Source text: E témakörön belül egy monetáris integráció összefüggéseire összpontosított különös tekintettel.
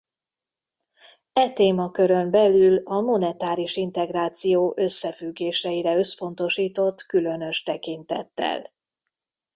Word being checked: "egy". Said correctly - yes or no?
no